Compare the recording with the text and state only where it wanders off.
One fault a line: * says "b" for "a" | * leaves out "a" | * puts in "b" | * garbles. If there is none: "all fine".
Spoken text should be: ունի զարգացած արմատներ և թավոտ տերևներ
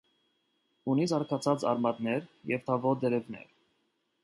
all fine